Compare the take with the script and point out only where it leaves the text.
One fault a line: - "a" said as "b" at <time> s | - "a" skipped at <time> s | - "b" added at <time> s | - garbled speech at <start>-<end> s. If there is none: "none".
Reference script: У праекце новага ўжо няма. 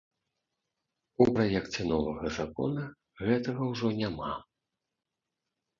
- "закона гэтага" added at 2.4 s